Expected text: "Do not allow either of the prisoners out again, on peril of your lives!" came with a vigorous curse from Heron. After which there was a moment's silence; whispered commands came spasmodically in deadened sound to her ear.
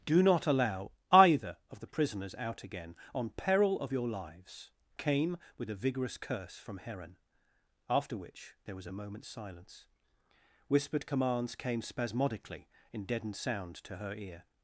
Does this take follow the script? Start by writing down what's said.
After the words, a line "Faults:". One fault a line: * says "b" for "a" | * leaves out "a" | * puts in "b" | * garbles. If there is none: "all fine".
"Do not allow either of the prisoners out again, on peril of your lives!" came with a vigorous curse from Heron. After which there was a moment's silence; whispered commands came spasmodically in deadened sound to her ear.
Faults:
all fine